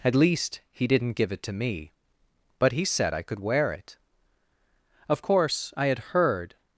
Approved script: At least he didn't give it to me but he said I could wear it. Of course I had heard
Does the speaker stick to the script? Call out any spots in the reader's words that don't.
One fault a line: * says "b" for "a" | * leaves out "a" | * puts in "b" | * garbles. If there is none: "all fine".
all fine